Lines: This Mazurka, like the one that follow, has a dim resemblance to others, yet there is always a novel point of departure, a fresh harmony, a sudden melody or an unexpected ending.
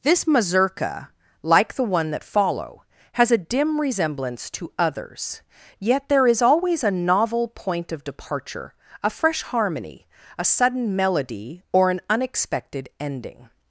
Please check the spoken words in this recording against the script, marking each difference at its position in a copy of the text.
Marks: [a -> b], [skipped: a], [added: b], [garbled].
This Mazurka, like the one that follow, has a dim resemblance to others, yet there is always a novel point of departure, a fresh harmony, a sudden melody or an unexpected ending.